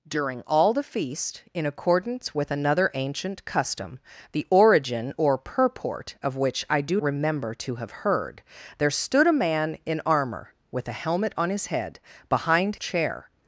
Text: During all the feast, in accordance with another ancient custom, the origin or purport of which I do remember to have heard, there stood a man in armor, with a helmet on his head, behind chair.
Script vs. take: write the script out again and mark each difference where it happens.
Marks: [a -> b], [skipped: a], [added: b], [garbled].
During all the feast, in accordance with another ancient custom, the origin or purport of which I do remember to have heard, there stood a man in armor, with a helmet on his head, behind chair.